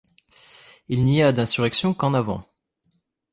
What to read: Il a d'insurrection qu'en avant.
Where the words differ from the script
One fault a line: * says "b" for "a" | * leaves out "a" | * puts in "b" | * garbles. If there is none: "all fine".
* puts in "n'y"